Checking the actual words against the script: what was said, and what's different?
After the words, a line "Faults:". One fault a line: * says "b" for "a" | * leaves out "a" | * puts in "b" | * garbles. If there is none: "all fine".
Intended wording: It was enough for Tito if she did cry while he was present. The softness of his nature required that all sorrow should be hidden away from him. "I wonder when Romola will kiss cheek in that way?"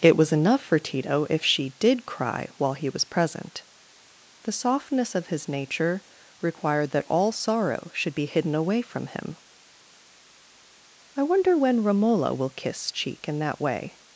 It was enough for Tito if she did cry while he was present. The softness of his nature required that all sorrow should be hidden away from him. "I wonder when Romola will kiss cheek in that way?"
Faults:
all fine